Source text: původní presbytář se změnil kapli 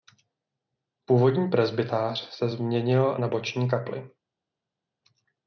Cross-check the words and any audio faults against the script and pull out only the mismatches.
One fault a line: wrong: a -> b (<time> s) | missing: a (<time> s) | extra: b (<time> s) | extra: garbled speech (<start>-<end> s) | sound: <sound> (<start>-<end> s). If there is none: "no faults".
extra: na boční (3.2 s)